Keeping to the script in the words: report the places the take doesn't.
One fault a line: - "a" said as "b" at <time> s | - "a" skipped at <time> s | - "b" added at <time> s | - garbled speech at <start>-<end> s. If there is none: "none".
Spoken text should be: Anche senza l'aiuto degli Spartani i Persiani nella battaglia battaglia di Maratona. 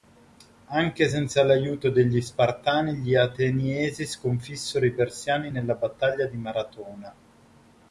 - "gli Ateniesi sconfissero" added at 3.0 s
- "battaglia" skipped at 6.3 s